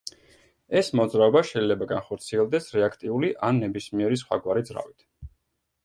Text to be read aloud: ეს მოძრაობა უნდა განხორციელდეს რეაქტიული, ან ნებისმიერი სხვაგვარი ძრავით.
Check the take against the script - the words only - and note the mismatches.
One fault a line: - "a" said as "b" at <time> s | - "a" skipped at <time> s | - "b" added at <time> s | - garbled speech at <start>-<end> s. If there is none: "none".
- "უნდა" said as "შეიძლება" at 1.5 s